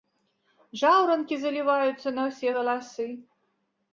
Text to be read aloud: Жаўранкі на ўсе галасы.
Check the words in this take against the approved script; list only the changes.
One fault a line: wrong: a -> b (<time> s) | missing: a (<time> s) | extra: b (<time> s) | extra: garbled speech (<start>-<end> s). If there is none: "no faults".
extra: заліваюцца (1.4 s)